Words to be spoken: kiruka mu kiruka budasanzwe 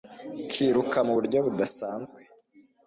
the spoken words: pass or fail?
fail